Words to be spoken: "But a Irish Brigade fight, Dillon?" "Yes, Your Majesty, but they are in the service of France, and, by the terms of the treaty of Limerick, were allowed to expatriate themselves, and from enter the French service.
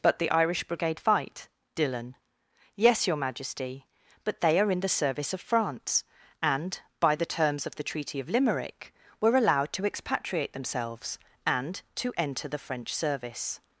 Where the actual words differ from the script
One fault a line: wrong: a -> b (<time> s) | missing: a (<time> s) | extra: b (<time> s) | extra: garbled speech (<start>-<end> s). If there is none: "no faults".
wrong: a -> the (0.2 s)
wrong: from -> to (11.9 s)